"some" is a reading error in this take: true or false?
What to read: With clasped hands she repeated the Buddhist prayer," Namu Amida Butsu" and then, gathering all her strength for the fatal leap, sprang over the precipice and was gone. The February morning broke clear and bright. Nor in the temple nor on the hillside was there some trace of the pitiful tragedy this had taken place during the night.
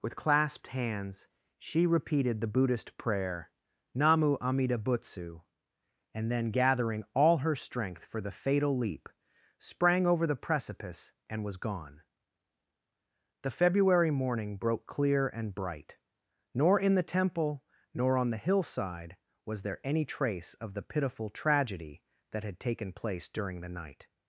true